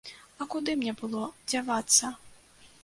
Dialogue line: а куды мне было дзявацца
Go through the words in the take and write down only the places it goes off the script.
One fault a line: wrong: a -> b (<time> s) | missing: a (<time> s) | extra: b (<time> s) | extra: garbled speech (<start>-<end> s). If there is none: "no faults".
no faults